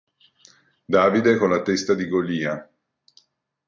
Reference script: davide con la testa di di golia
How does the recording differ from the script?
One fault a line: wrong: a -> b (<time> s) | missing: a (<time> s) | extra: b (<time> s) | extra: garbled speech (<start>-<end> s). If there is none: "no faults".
missing: di (2.1 s)